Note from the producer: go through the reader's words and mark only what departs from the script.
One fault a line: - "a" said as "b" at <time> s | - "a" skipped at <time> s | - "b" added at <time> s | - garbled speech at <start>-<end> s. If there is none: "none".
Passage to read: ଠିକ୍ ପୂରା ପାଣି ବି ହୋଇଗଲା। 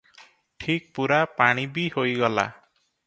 none